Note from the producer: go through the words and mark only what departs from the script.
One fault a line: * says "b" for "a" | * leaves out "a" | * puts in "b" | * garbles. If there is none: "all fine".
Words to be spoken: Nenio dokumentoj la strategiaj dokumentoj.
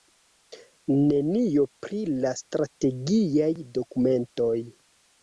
* says "pri" for "dokumentoj"